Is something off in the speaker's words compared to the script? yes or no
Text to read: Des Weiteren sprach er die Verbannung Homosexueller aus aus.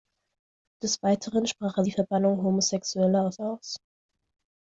no